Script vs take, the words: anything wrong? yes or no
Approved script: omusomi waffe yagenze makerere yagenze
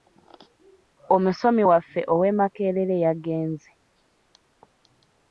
yes